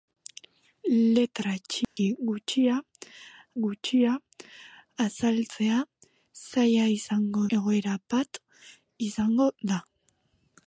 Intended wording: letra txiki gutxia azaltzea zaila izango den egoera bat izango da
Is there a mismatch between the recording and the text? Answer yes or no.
yes